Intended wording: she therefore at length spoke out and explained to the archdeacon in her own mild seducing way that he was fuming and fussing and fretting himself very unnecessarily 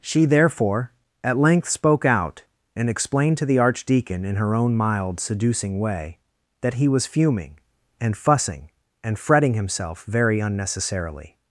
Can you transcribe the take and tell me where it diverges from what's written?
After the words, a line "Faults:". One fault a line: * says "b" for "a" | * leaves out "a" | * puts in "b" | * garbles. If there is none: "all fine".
she therefore at length spoke out and explained to the archdeacon in her own mild seducing way that he was fuming and fussing and fretting himself very unnecessarily
Faults:
all fine